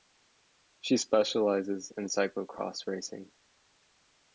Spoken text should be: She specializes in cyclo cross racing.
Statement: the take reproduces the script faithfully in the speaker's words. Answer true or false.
true